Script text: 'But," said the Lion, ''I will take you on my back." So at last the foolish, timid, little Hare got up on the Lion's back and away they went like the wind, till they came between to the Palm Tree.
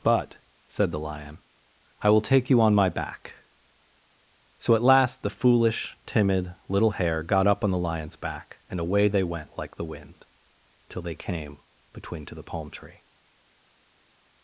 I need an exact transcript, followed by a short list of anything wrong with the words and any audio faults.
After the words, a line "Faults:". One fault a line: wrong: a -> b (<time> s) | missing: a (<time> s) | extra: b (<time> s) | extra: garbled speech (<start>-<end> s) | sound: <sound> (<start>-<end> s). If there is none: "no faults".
'But," said the Lion, ''I will take you on my back." So at last the foolish, timid, little Hare got up on the Lion's back and away they went like the wind, till they came between to the Palm Tree.
Faults:
no faults